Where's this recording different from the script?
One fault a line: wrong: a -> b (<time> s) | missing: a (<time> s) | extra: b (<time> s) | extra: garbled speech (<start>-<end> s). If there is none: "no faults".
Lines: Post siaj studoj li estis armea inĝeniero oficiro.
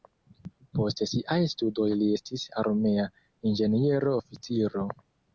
no faults